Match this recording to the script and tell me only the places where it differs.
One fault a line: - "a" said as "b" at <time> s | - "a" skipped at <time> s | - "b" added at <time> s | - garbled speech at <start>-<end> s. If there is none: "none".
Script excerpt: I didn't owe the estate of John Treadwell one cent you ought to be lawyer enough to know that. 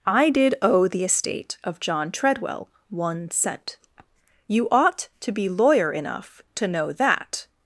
- "didn't" said as "did" at 0.3 s